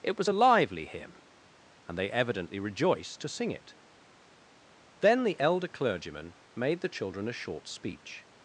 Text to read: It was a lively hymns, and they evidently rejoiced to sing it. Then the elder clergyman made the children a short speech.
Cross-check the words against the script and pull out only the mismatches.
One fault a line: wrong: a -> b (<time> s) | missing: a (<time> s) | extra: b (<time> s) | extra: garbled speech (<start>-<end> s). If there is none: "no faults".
wrong: hymns -> hymn (0.8 s)